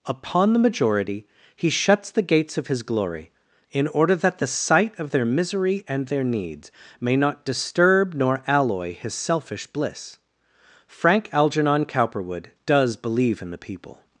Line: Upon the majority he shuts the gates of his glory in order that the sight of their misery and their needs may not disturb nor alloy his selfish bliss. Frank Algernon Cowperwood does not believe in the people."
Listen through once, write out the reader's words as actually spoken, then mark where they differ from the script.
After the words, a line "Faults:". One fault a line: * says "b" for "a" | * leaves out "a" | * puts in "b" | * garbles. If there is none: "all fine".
Upon the majority he shuts the gates of his glory in order that the sight of their misery and their needs may not disturb nor alloy his selfish bliss. Frank Algernon Cowperwood does believe in the people."
Faults:
* leaves out "not"